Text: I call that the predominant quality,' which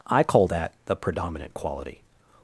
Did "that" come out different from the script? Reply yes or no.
no